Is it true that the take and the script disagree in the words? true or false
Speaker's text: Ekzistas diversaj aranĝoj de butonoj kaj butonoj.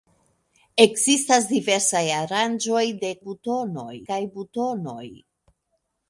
false